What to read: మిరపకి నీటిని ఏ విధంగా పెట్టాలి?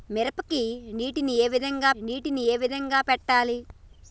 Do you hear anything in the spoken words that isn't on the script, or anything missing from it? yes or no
yes